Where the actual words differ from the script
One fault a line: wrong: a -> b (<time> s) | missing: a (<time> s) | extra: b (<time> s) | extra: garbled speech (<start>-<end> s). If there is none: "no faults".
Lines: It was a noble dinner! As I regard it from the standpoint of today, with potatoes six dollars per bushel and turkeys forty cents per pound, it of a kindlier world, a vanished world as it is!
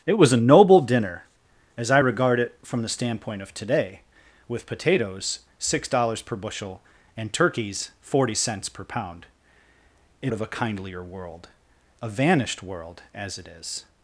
no faults